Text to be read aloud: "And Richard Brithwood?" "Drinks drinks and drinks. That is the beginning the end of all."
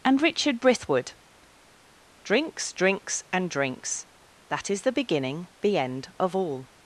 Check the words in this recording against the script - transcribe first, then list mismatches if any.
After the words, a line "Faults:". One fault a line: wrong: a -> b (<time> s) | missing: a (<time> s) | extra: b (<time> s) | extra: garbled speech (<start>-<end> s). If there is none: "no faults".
"And Richard Brithwood?" "Drinks drinks and drinks. That is the beginning the end of all."
Faults:
no faults